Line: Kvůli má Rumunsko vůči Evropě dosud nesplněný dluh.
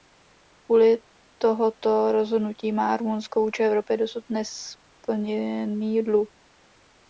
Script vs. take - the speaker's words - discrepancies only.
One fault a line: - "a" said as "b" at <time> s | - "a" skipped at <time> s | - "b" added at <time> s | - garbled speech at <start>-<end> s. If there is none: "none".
- "tohoto rozhodnutí" added at 1.4 s